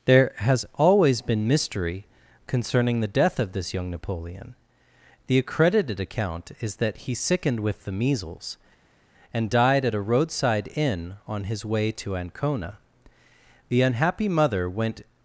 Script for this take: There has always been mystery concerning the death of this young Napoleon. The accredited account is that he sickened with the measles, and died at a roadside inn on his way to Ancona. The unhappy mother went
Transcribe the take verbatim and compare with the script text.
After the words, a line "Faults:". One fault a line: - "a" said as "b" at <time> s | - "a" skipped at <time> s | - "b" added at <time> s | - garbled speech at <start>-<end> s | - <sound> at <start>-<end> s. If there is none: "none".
There has always been mystery concerning the death of this young Napoleon. The accredited account is that he sickened with the measles, and died at a roadside inn on his way to Ancona. The unhappy mother went
Faults:
none